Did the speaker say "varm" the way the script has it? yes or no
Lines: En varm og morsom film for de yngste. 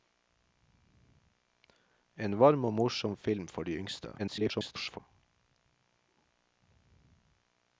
yes